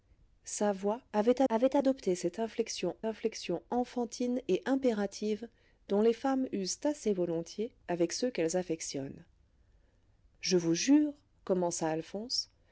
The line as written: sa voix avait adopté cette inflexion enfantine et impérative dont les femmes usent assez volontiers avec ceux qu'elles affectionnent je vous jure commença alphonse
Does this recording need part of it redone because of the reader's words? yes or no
yes